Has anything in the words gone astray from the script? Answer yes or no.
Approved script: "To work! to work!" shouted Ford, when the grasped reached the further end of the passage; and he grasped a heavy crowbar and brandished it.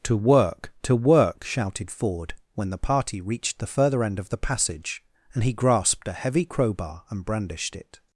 yes